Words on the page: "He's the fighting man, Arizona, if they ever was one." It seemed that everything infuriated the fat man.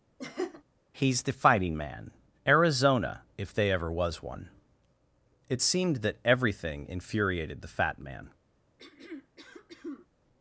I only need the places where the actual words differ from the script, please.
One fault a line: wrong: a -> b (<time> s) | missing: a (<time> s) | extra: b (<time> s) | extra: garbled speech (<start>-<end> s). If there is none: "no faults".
no faults